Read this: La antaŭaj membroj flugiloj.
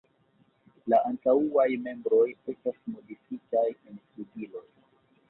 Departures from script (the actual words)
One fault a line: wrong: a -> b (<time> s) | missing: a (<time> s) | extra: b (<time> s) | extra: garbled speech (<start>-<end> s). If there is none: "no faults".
extra: estas modifitaj en (2.5 s)